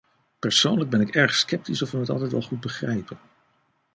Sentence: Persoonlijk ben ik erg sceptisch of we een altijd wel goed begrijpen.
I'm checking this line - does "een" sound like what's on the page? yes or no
no